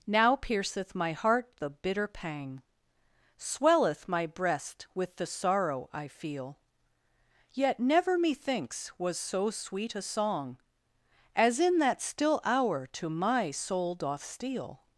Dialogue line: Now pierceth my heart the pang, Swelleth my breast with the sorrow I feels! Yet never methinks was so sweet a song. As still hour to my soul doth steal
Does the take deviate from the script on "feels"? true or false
true